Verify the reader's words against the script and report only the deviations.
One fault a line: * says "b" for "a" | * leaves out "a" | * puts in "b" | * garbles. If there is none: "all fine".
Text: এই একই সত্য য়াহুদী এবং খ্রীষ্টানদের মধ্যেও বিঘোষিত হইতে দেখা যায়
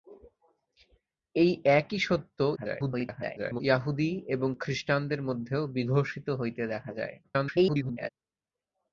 * garbles
* garbles